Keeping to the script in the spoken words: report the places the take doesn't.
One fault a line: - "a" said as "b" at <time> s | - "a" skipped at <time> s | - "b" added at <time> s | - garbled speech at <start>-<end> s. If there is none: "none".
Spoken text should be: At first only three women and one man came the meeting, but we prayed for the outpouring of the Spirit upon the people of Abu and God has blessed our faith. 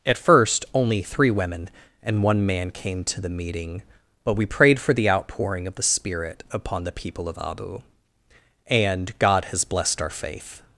- "to" added at 3.0 s